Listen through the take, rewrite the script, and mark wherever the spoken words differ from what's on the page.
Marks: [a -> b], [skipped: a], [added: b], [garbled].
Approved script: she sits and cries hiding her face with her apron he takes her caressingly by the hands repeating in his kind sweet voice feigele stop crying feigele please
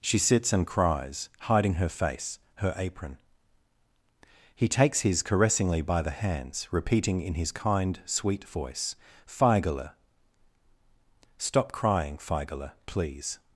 she sits and cries hiding her face [skipped: with] her apron he takes [her -> his] caressingly by the hands repeating in his kind sweet voice feigele stop crying feigele please